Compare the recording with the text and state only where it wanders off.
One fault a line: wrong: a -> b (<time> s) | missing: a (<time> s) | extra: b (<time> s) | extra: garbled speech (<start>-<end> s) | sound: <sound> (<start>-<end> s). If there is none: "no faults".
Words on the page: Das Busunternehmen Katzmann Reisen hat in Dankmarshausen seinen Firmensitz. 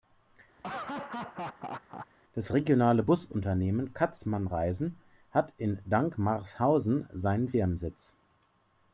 sound: laugh (0.6-2.1 s)
extra: regionale (2.5 s)